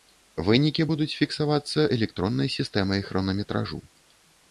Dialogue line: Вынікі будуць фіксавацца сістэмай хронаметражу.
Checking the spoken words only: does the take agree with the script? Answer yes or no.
no